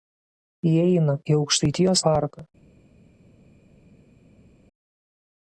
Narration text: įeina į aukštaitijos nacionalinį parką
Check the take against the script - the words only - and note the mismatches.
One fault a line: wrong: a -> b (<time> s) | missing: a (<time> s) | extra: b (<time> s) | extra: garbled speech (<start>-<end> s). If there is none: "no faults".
missing: nacionalinį (2.0 s)